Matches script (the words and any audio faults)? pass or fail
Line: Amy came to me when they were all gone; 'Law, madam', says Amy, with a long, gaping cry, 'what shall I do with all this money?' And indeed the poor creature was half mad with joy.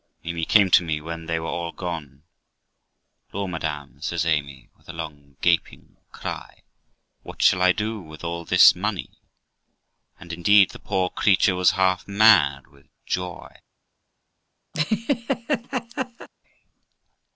fail